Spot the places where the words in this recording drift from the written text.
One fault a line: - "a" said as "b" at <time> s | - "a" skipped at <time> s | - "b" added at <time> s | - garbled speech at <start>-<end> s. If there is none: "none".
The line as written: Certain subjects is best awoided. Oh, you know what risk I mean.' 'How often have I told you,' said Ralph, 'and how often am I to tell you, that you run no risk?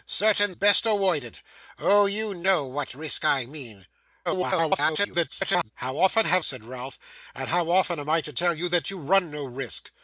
- "subjects is" skipped at 0.6 s
- garbled speech at 4.3-5.7 s
- "I told you" skipped at 6.4 s